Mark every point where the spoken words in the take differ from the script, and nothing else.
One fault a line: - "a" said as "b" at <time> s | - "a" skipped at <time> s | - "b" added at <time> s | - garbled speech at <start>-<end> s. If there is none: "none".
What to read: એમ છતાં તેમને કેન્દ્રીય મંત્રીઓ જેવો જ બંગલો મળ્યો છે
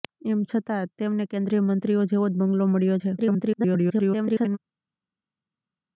- garbled speech at 3.2-4.6 s